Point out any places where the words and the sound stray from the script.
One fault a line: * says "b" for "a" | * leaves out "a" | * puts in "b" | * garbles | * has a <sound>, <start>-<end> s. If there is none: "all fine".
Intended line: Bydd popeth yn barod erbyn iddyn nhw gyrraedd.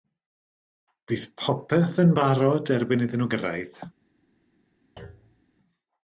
* has a thud, 5.0-5.4 s